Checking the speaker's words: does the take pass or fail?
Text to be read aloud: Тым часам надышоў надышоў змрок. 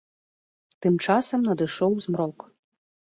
fail